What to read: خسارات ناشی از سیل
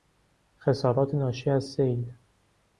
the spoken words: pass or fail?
pass